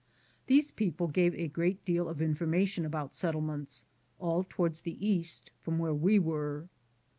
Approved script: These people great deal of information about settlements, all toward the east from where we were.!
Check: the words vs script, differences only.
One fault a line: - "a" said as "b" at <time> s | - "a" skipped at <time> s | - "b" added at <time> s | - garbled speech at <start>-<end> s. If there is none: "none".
- "gave a" added at 1.1 s